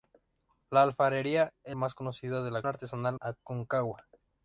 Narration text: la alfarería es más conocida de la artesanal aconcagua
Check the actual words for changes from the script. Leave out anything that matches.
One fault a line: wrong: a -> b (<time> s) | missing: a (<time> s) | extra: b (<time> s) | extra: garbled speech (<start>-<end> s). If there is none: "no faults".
no faults